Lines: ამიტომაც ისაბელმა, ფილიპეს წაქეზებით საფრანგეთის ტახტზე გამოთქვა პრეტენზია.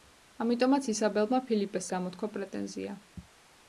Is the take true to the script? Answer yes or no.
no